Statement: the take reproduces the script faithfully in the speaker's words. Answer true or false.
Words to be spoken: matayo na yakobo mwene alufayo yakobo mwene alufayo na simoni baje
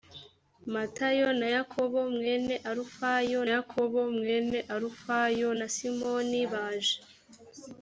true